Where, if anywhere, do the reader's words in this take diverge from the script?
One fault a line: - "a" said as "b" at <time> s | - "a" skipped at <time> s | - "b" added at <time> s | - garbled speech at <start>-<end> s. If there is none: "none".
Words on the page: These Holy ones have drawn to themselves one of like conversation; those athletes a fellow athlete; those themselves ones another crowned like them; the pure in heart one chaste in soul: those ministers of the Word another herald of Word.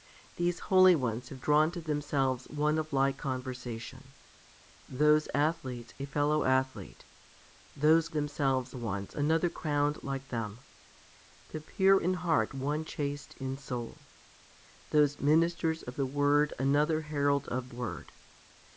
none